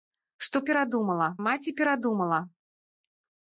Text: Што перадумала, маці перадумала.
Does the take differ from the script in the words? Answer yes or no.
no